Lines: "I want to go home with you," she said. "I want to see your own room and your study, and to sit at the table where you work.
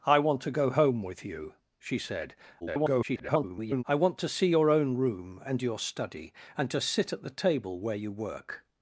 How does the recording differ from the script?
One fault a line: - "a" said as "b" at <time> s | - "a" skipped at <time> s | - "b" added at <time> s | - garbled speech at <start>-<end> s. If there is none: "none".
- garbled speech at 2.6-3.8 s